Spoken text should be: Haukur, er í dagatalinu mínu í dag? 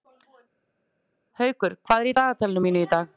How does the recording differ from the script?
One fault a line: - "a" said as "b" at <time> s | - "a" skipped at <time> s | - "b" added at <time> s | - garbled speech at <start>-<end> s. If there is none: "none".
- "hvað" added at 1.9 s